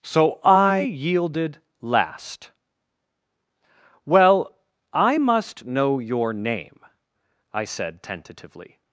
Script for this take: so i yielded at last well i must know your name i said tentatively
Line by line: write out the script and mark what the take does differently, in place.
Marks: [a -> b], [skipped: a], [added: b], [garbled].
so i yielded [skipped: at] last well i must know your name i said tentatively